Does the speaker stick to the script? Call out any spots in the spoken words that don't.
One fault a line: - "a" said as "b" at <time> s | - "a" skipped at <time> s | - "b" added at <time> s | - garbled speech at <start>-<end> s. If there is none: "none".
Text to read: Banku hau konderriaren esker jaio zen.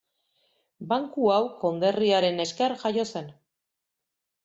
none